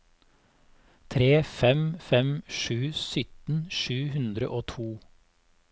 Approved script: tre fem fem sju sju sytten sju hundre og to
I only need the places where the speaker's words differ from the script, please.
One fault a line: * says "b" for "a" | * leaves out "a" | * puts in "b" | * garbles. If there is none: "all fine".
* leaves out "sju"